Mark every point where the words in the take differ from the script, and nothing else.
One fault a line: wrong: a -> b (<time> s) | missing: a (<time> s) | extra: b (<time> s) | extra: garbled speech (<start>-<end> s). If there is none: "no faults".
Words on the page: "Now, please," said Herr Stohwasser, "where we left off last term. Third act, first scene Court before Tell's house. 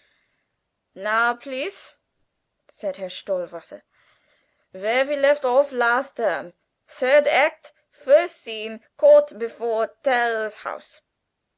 no faults